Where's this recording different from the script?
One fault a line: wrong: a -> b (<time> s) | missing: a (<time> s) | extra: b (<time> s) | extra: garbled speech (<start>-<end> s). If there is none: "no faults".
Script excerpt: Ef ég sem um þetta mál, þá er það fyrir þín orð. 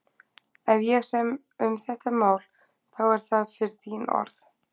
no faults